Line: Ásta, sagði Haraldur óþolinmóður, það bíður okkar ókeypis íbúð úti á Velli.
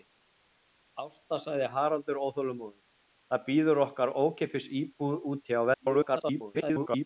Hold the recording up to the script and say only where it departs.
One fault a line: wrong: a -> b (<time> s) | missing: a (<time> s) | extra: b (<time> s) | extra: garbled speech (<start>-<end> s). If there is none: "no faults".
extra: garbled speech (5.7-7.1 s)